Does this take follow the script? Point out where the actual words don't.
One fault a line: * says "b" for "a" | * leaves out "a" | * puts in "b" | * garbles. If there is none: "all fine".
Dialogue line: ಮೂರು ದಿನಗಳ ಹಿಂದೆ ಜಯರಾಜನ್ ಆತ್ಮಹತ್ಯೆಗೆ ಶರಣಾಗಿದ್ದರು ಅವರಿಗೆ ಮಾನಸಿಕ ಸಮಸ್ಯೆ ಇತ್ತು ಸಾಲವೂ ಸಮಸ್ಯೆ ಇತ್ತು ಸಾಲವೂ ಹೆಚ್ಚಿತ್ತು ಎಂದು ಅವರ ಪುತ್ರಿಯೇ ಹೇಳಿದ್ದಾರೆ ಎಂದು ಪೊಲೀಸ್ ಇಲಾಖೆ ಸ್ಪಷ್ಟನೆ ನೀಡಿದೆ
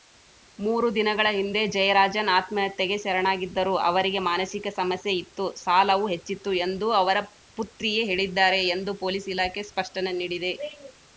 * leaves out "ಸಮಸ್ಯೆ ಇತ್ತು ಸಾಲವೂ"